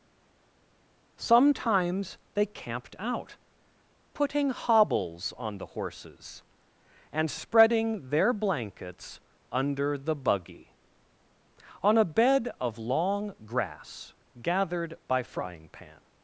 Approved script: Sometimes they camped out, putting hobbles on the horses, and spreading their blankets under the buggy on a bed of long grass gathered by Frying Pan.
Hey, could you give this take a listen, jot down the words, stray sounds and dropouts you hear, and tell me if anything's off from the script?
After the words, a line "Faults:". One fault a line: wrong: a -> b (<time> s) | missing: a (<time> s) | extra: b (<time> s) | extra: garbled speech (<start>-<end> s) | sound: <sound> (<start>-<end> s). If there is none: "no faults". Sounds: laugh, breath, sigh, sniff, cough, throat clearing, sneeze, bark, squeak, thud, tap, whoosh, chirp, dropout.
Sometimes they camped out, putting hobbles on the horses, and spreading their blankets under the buggy on a bed of long grass gathered by Frying Pan.
Faults:
no faults